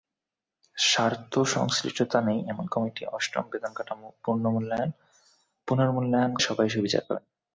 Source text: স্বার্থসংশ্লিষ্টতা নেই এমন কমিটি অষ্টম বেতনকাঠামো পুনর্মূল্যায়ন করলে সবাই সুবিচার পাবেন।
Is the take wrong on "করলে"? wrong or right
wrong